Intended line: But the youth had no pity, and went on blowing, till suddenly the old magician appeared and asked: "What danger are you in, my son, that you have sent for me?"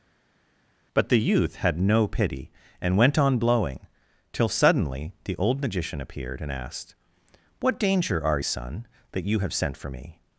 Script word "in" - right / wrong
wrong